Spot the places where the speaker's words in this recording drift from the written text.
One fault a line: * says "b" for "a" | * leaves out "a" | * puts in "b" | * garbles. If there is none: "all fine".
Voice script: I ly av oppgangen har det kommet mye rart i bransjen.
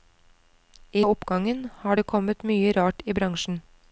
* leaves out "ly"